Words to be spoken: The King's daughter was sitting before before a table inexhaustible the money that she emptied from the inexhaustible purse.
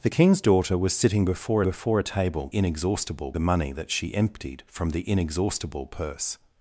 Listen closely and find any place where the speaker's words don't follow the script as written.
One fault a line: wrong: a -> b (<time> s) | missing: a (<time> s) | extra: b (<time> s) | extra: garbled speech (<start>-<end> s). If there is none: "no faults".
no faults